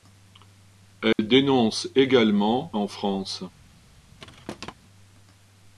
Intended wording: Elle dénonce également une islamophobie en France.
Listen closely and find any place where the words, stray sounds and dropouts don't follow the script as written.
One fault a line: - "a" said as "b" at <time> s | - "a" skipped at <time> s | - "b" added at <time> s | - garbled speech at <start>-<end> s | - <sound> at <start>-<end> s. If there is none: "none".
- dropout at 1.1-1.2 s
- "une islamophobie" skipped at 2.7 s
- thud at 4.2-4.7 s